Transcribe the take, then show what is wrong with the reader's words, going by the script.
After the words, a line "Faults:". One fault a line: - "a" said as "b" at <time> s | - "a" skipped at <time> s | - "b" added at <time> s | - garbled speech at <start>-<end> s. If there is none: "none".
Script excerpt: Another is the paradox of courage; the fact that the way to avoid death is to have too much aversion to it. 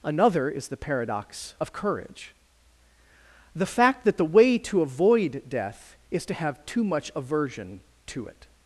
Another is the paradox of courage; the fact that the way to avoid death is to have too much aversion to it.
Faults:
none